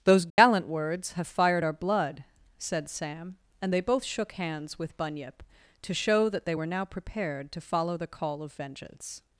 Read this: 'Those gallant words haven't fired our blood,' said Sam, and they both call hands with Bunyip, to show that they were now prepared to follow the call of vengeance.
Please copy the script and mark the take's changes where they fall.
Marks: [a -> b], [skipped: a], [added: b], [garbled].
'Those gallant words [haven't -> have] fired our blood,' said Sam, and they both [call -> shook] hands with Bunyip, to show that they were now prepared to follow the call of vengeance.